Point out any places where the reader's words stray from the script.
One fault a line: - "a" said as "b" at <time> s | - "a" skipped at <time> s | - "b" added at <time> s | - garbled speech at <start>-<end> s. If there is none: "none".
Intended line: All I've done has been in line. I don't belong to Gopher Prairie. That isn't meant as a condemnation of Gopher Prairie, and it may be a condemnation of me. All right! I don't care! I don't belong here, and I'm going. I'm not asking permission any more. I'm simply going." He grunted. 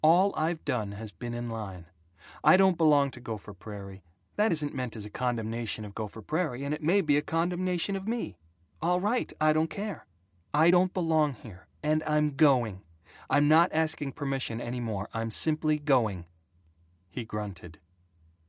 none